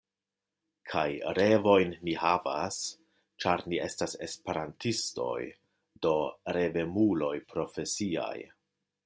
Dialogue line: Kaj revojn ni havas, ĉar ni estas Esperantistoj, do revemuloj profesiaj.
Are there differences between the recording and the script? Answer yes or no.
no